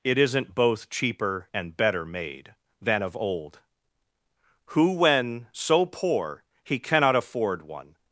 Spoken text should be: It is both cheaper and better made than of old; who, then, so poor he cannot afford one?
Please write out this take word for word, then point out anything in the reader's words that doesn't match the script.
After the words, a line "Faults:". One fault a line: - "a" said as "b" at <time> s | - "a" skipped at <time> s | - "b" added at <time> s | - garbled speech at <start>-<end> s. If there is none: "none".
It isn't both cheaper and better made than of old; who, when, so poor he cannot afford one?
Faults:
- "is" said as "isn't" at 0.2 s
- "then" said as "when" at 4.9 s